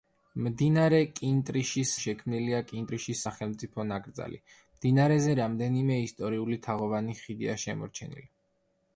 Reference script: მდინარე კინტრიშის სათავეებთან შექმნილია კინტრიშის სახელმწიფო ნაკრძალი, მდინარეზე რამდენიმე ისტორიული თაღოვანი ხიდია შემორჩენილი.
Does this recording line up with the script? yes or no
no